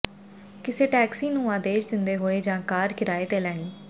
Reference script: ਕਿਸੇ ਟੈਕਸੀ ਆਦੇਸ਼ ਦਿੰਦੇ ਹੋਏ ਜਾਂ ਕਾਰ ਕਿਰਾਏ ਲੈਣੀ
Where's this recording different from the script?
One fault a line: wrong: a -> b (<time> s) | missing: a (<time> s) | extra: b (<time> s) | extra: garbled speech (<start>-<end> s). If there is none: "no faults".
extra: ਨੂੰ (1.3 s)
extra: ਤੇ (3.3 s)